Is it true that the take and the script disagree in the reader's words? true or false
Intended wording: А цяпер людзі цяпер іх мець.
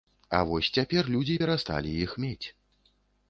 true